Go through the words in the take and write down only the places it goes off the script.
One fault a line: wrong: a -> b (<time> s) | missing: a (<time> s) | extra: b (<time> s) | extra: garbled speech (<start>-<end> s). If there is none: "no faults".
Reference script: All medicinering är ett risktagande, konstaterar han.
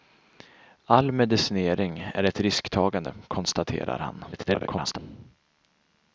extra: garbled speech (4.3-5.0 s)